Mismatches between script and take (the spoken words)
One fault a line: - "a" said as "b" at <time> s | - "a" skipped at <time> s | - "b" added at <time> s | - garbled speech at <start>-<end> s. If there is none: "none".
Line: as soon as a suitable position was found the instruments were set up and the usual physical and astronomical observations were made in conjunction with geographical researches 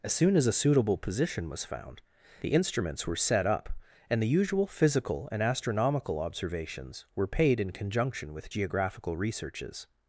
- "made" said as "paid" at 7.3 s